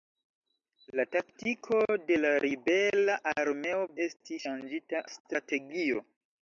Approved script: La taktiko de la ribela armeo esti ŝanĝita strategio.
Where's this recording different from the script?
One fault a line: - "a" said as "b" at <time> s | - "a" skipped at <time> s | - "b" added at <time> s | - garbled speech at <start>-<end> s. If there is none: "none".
none